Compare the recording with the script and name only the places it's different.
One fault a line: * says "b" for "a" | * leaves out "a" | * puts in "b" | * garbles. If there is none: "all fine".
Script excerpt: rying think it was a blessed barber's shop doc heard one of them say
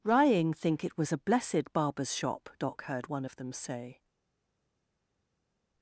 all fine